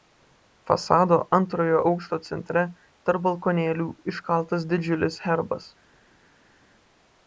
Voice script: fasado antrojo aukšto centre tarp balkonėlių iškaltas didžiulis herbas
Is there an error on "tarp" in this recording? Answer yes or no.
no